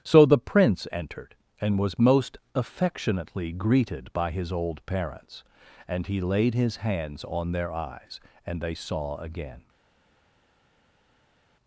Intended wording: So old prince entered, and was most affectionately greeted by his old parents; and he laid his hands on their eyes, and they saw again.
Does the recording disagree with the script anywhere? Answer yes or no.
yes